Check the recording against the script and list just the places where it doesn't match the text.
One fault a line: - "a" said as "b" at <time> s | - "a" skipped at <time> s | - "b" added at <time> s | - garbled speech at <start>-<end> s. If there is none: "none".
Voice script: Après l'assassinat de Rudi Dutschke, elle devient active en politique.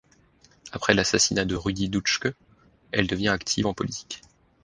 none